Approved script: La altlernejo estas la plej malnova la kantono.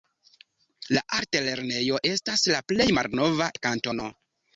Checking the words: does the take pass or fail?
pass